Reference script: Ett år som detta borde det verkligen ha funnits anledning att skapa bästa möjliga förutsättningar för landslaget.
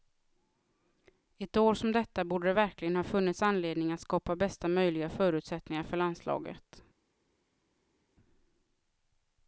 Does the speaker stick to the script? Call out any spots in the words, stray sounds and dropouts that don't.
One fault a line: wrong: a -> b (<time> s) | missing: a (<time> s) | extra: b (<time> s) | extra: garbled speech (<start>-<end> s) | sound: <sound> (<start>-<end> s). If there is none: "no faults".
no faults